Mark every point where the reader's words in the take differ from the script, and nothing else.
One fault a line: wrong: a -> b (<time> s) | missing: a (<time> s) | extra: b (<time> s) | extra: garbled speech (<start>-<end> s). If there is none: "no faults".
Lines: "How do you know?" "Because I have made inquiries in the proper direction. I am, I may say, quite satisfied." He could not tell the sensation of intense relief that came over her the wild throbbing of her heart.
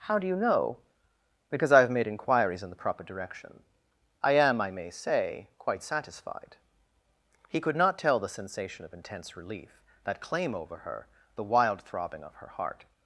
wrong: came -> claim (10.2 s)